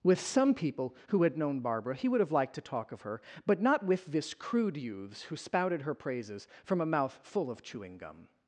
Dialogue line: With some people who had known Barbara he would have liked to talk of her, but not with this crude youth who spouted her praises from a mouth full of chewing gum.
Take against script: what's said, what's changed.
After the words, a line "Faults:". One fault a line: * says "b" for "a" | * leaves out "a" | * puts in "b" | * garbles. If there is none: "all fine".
With some people who had known Barbara he would have liked to talk of her, but not with this crude youths who spouted her praises from a mouth full of chewing gum.
Faults:
* says "youths" for "youth"